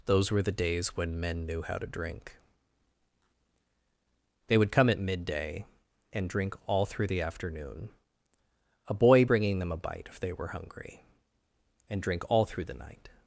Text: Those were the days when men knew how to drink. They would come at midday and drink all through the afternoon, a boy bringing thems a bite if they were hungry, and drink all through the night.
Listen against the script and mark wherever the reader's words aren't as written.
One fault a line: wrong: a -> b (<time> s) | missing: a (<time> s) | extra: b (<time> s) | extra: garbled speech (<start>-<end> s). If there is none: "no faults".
wrong: thems -> them (9.6 s)